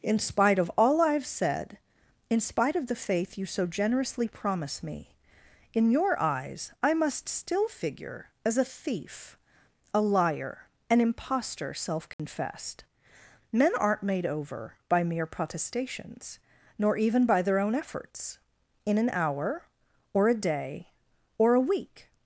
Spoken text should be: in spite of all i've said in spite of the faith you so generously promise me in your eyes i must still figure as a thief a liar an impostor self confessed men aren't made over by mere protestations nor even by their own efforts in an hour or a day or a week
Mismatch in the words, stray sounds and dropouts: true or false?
true